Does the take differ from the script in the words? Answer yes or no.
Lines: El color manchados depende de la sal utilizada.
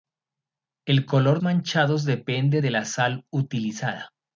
no